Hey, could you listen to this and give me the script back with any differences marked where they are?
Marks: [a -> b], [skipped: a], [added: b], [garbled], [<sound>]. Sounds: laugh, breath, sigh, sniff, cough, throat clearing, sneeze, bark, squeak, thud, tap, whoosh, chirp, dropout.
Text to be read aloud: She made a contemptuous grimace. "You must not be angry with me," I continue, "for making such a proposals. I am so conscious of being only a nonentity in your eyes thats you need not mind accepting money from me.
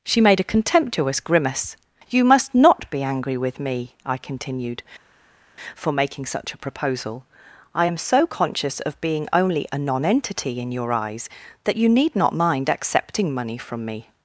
She made a contemptuous grimace. "You must not be angry with me," I [continue, -> continued] "for making such a [proposals. -> proposal] I am so conscious of being only a nonentity in your eyes [thats -> that] you need not mind accepting money from me.